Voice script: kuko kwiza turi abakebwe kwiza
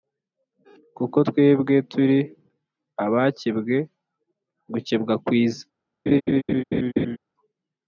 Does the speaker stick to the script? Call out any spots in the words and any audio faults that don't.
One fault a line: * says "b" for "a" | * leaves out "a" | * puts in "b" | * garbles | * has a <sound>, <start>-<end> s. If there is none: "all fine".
* says "twebwe" for "kwiza"
* puts in "gukebwa"
* has a laugh, 6.1-7.2 s